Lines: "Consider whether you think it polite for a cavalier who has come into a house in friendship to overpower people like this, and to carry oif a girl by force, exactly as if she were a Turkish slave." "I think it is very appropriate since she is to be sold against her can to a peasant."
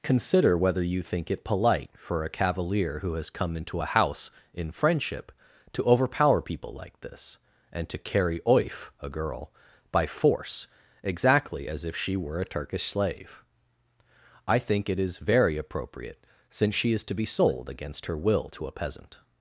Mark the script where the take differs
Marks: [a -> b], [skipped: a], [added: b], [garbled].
"Consider whether you think it polite for a cavalier who has come into a house in friendship to overpower people like this, and to carry oif a girl by force, exactly as if she were a Turkish slave." "I think it is very appropriate since she is to be sold against her [can -> will] to a peasant."